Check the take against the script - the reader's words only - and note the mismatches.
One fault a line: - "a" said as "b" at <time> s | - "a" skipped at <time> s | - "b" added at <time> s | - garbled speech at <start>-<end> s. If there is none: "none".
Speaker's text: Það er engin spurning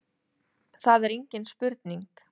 none